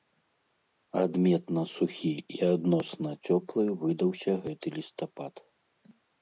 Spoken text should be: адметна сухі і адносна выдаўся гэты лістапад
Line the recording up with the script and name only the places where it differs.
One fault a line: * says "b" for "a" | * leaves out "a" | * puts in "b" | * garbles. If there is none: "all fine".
* puts in "цёплы"